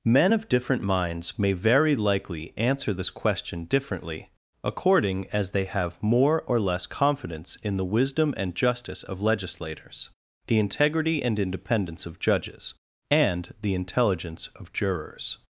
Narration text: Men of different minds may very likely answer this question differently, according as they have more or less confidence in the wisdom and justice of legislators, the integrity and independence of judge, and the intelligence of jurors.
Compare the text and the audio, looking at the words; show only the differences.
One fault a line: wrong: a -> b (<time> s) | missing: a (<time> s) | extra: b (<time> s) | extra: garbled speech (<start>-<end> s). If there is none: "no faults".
wrong: judge -> judges (12.2 s)